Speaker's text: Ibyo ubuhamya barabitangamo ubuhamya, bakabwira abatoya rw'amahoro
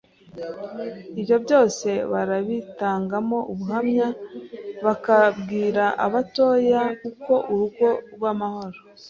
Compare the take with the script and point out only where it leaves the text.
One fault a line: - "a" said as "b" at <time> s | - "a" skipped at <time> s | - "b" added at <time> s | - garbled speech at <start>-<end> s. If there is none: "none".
- "ubuhamya" said as "byose" at 1.4 s
- "uko urugo" added at 7.1 s